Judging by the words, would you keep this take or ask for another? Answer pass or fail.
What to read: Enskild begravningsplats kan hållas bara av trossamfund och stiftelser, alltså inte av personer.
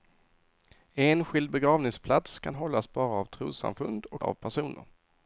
fail